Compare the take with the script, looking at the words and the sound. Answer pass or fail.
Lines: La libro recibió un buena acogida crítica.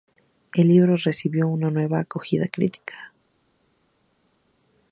fail